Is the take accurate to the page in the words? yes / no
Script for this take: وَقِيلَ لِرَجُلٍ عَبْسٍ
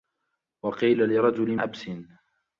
yes